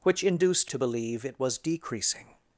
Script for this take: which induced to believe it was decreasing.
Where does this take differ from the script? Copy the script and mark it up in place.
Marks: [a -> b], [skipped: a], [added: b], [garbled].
which induced to believe it was decreasing.